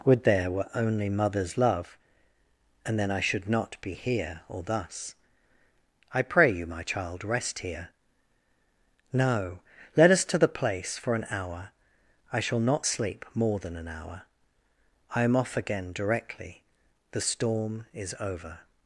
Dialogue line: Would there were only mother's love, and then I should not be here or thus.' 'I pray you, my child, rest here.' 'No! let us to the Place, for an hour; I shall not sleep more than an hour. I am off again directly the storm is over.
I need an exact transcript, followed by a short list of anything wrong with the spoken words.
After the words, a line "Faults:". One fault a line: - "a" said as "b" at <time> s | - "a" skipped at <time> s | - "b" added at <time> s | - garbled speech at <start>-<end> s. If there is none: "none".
Would there were only mother's love, and then I should not be here or thus.' 'I pray you, my child, rest here.' 'No! let us to the Place, for an hour; I shall not sleep more than an hour. I am off again directly the storm is over.
Faults:
none